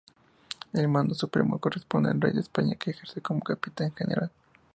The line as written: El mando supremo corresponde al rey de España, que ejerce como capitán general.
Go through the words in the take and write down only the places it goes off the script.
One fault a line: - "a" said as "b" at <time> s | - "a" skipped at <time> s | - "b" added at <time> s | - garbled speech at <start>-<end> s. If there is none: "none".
none